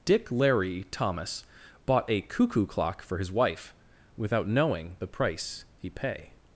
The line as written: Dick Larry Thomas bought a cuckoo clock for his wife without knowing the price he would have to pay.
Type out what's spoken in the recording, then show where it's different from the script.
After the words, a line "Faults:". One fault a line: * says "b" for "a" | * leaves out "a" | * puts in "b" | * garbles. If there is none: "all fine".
Dick Larry Thomas bought a cuckoo clock for his wife without knowing the price he pay.
Faults:
* leaves out "would have to"